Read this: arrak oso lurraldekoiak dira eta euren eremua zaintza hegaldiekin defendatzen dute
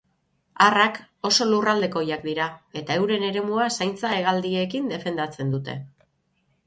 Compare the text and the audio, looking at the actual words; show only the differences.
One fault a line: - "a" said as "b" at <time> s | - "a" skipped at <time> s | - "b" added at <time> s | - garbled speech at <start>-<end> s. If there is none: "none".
none